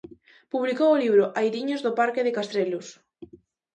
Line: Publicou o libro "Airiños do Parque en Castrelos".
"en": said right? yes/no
no